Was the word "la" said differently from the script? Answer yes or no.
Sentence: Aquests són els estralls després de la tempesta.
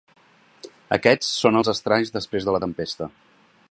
no